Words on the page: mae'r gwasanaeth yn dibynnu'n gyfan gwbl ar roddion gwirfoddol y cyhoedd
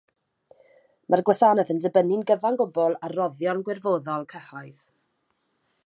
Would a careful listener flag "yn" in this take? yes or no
no